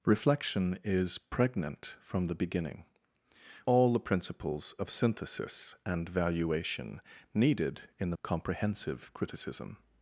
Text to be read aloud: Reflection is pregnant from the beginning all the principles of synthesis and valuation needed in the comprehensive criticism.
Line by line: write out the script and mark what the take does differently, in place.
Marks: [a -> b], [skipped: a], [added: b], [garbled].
Reflection is pregnant from the beginning all the principles of synthesis and valuation needed in the comprehensive criticism.